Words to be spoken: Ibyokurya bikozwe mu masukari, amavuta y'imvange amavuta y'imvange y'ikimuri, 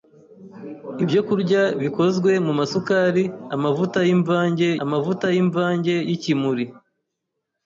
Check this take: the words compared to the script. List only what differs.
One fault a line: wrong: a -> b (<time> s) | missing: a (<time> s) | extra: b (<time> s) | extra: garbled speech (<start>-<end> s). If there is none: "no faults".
no faults